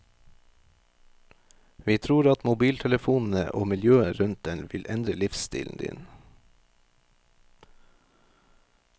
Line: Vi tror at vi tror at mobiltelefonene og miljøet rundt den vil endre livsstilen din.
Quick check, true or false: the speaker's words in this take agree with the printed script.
false